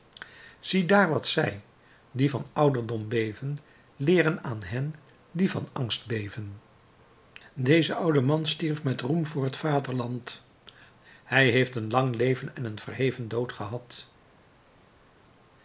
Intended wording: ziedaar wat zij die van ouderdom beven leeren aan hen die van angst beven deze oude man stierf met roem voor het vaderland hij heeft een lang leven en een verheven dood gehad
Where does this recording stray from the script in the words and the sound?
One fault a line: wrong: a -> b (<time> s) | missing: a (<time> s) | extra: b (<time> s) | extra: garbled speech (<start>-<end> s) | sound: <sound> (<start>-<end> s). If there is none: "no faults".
no faults